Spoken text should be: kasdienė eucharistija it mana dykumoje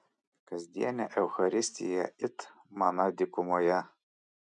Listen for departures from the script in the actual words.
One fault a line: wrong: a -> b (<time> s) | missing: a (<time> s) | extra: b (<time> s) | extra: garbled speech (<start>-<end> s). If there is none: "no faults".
no faults